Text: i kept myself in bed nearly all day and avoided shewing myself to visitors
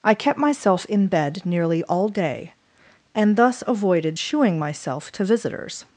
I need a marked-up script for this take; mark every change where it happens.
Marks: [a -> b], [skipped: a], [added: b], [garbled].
i kept myself in bed nearly all day and [added: thus] avoided shewing myself to visitors